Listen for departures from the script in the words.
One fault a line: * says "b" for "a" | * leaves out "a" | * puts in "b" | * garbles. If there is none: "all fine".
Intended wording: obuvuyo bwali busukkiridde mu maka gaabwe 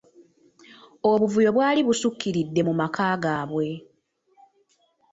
all fine